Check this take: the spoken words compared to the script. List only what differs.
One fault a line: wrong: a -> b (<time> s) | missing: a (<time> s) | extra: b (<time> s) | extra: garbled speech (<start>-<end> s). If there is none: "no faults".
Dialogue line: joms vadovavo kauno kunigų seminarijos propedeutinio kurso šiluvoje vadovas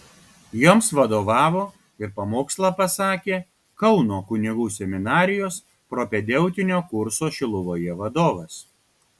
extra: ir pamokslą pasakė (2.0 s)